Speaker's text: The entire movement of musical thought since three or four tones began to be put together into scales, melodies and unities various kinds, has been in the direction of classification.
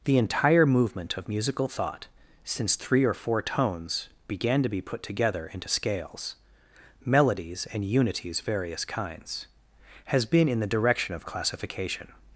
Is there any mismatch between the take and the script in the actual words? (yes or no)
no